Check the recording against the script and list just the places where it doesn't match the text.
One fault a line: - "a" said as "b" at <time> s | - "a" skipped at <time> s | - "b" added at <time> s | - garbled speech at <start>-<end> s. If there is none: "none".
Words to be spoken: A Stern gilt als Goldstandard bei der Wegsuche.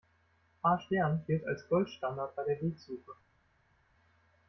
none